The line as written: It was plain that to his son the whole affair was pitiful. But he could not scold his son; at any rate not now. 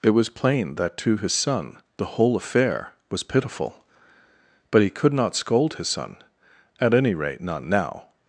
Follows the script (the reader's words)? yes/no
yes